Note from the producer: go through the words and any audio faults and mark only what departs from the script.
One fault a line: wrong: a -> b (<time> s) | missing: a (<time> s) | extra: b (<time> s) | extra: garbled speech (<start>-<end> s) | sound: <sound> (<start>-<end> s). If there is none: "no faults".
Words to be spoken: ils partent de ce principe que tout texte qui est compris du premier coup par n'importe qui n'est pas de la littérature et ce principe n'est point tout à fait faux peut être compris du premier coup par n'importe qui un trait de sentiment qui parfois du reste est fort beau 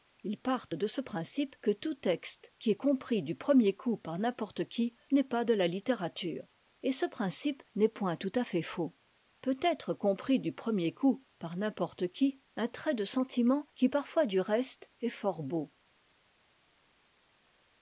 no faults